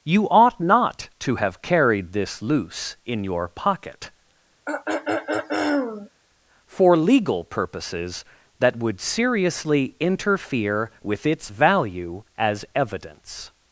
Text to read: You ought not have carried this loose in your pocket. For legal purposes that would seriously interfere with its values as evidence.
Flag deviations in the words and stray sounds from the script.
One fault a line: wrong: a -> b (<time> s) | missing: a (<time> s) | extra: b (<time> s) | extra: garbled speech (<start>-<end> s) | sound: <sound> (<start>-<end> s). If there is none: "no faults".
extra: to (1.2 s)
sound: throat clearing (4.7-6.1 s)
wrong: values -> value (11.5 s)